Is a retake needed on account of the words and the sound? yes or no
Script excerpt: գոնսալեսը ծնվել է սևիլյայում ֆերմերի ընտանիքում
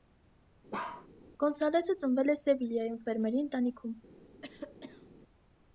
yes